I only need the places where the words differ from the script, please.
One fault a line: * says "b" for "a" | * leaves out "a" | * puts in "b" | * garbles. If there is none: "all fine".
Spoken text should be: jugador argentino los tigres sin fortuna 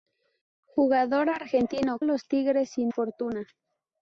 all fine